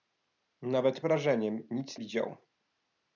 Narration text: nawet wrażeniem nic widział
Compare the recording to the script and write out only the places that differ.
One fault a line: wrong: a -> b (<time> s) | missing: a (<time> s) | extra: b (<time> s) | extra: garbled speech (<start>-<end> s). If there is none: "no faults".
no faults